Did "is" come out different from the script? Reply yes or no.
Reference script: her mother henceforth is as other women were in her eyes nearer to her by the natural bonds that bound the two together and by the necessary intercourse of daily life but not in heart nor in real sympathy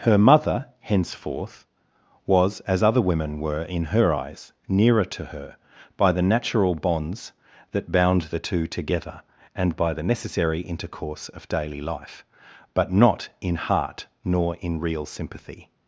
yes